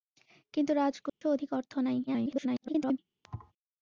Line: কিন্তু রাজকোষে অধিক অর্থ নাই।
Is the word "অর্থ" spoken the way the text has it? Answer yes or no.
yes